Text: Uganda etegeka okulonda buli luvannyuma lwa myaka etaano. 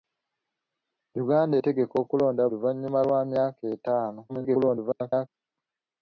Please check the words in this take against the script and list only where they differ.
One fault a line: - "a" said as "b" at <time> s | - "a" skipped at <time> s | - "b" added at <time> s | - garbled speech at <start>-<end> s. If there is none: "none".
- "buli" skipped at 2.4 s
- garbled speech at 4.3-5.3 s